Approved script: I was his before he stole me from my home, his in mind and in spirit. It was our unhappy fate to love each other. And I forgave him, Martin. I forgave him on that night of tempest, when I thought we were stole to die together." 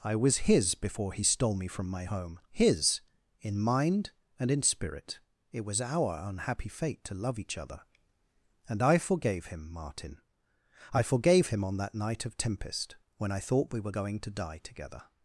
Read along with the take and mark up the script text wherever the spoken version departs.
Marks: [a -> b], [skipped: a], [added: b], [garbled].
I was his before he stole me from my home, his in mind and in spirit. It was our unhappy fate to love each other. And I forgave him, Martin. I forgave him on that night of tempest, when I thought we were [stole -> going] to die together."